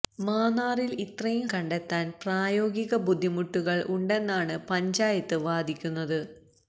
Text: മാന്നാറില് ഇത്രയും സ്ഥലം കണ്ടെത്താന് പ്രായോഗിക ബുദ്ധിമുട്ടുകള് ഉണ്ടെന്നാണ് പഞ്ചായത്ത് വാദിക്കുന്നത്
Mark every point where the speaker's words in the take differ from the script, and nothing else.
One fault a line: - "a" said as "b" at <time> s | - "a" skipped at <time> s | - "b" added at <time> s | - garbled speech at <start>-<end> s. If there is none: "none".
- "സ്ഥലം" skipped at 1.5 s